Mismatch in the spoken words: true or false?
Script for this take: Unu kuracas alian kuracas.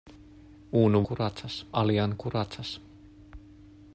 false